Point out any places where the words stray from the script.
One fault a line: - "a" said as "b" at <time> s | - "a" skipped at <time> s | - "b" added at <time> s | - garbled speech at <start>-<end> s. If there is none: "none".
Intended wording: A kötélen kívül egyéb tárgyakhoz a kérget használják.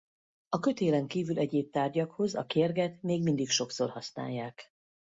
- "még mindig sokszor" added at 3.0 s